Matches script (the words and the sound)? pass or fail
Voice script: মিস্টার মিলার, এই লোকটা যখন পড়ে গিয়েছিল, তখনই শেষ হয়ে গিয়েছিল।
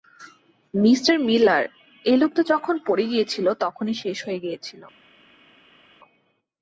pass